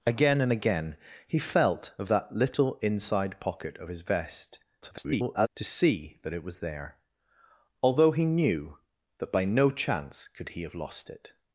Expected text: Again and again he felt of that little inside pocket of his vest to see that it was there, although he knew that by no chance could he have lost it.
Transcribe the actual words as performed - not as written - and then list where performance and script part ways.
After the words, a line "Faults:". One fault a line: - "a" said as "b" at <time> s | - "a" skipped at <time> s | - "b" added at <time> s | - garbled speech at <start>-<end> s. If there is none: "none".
Again and again he felt of that little inside pocket of his vest [garbled] to see that it was there, although he knew that by no chance could he have lost it.
Faults:
- garbled speech at 4.8-5.5 s